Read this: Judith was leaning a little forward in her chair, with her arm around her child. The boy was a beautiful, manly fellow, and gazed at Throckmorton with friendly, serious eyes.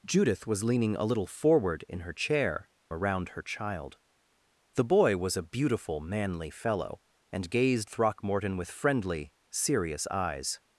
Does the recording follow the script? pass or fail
fail